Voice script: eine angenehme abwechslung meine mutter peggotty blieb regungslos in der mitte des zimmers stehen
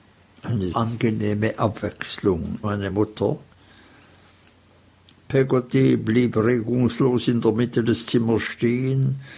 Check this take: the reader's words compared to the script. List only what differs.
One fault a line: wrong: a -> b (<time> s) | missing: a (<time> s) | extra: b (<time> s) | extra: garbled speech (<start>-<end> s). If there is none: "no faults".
no faults